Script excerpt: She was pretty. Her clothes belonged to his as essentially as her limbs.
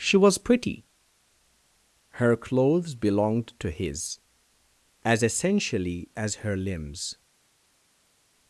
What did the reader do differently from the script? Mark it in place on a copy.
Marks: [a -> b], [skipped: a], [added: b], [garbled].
She was pretty. Her clothes belonged to his as essentially as her limbs.